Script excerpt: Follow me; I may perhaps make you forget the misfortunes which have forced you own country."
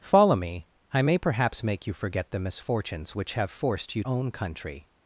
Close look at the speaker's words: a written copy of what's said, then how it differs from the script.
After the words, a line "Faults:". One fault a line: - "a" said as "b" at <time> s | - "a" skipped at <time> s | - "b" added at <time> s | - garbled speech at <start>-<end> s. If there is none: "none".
Follow me; I may perhaps make you forget the misfortunes which have forced you own country."
Faults:
none